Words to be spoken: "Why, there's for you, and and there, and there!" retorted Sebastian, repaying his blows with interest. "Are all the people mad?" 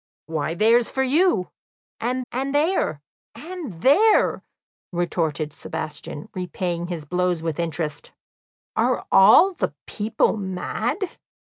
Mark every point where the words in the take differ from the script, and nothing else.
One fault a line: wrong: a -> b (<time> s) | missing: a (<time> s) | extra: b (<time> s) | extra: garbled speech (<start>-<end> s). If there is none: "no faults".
no faults